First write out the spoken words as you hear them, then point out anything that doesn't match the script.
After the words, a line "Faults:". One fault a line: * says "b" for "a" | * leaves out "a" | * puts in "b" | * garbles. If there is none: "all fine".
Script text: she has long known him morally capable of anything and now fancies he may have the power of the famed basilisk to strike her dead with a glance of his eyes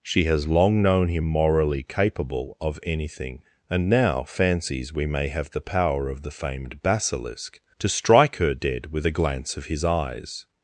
she has long known him morally capable of anything and now fancies we may have the power of the famed basilisk to strike her dead with a glance of his eyes
Faults:
* says "we" for "he"